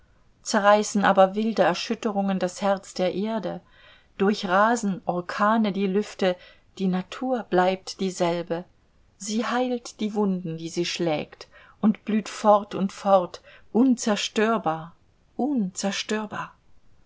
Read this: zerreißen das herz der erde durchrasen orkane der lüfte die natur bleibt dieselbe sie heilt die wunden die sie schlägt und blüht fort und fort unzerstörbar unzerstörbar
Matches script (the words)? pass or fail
fail